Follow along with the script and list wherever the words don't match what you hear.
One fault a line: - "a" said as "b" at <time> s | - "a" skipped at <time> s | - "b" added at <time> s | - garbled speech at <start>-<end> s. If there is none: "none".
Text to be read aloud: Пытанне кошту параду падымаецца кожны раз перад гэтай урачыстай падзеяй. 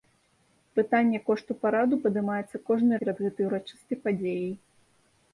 - "раз" skipped at 2.9 s